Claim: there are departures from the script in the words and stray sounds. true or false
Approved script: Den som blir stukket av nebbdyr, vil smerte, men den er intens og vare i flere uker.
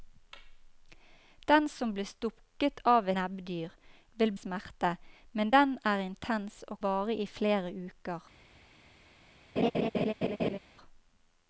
true